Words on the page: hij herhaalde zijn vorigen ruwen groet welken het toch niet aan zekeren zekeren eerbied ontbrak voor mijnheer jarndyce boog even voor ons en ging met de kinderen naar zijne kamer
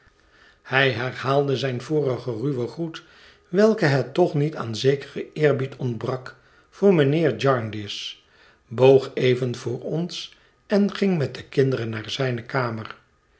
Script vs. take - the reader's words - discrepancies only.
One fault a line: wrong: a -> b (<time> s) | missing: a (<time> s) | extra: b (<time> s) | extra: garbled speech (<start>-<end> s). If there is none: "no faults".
missing: zekeren (5.2 s)